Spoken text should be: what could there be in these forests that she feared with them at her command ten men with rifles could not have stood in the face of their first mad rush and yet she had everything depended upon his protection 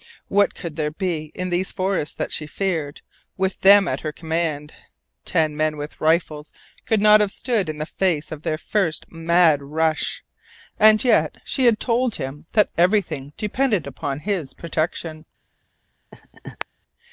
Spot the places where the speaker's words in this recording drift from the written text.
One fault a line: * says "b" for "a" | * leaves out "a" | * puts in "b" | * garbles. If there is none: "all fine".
* puts in "told him that"